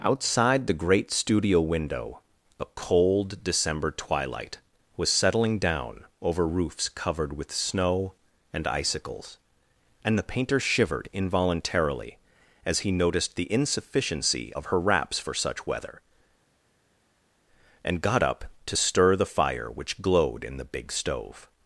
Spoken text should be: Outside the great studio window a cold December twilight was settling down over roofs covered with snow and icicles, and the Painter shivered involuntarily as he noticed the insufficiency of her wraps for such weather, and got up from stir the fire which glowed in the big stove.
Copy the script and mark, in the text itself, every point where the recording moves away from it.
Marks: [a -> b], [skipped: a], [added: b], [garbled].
Outside the great studio window a cold December twilight was settling down over roofs covered with snow and icicles, and the Painter shivered involuntarily as he noticed the insufficiency of her wraps for such weather, and got up [from -> to] stir the fire which glowed in the big stove.